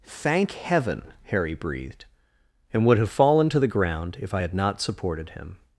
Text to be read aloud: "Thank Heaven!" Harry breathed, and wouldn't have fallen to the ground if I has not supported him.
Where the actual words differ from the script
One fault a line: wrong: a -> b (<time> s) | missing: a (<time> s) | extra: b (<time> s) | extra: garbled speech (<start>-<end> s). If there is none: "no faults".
wrong: wouldn't -> would (2.9 s)
wrong: has -> had (4.4 s)